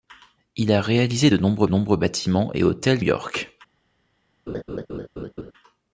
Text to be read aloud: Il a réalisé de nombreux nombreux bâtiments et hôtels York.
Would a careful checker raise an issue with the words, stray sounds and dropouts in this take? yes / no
yes